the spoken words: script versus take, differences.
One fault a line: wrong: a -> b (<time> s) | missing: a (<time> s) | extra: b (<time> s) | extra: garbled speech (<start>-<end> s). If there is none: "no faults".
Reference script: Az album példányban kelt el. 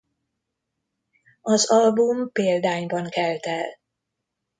no faults